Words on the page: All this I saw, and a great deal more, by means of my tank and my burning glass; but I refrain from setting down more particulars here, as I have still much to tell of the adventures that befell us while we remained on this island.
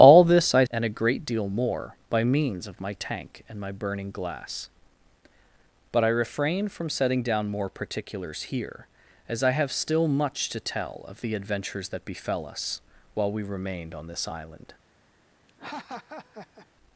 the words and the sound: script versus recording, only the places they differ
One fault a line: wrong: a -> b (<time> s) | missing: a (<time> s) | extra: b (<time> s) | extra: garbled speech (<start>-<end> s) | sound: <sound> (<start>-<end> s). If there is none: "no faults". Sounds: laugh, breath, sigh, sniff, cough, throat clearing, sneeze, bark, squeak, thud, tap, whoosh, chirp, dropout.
missing: saw (0.7 s)
sound: laugh (15.5-16.7 s)